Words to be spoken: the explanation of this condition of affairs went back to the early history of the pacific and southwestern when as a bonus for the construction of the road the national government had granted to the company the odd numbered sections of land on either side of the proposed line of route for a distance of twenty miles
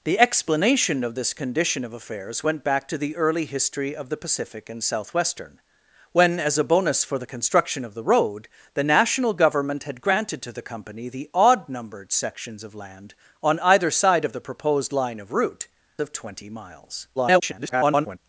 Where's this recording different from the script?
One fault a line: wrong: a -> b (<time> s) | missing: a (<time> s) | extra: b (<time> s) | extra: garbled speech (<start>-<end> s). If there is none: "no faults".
missing: for a distance (15.7 s)
extra: garbled speech (17.2-18.2 s)